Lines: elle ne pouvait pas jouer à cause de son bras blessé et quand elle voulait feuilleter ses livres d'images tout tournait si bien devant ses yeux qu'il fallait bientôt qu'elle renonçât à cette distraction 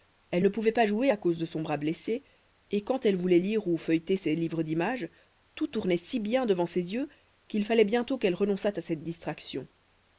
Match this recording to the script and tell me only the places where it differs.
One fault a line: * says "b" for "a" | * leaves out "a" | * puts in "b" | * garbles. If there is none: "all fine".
* puts in "lire ou"